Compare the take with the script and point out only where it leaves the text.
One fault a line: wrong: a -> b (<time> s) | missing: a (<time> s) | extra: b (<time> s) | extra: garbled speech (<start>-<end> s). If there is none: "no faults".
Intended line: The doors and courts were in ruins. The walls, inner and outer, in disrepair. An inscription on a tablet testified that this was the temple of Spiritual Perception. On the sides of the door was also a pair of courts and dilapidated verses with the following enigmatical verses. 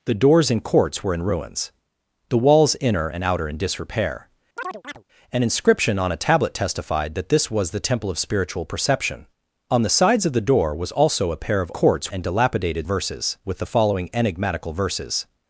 no faults